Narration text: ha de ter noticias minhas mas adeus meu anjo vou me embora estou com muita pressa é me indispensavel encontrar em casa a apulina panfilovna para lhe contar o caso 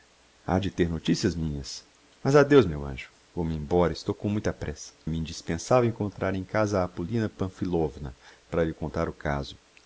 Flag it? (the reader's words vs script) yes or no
yes